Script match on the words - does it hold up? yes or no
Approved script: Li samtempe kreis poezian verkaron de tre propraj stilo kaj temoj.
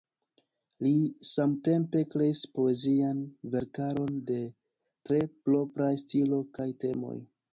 yes